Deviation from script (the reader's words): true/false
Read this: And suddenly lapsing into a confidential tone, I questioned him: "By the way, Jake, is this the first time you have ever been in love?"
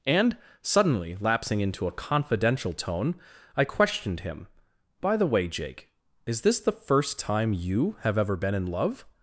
false